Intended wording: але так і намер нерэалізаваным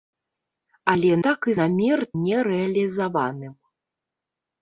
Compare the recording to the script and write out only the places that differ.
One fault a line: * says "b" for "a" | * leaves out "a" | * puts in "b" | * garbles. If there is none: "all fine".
all fine